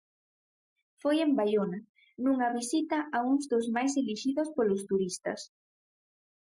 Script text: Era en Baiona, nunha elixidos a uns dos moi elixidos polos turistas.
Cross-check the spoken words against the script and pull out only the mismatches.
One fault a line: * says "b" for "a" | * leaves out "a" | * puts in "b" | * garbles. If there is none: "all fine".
* says "Foi" for "Era"
* says "visita" for "elixidos"
* says "máis" for "moi"